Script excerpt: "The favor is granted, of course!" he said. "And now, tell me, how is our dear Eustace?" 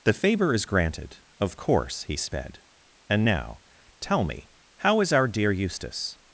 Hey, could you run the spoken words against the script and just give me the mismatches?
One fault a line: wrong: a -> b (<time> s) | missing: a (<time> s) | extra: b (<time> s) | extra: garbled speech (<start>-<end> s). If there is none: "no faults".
wrong: said -> sped (2.2 s)